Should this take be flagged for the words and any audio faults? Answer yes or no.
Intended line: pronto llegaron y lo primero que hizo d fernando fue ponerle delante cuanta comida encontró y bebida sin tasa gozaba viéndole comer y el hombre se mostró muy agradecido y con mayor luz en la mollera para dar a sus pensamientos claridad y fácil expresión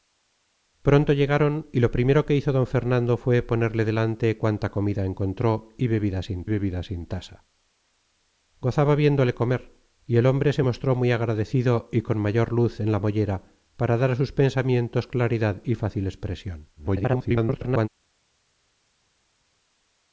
yes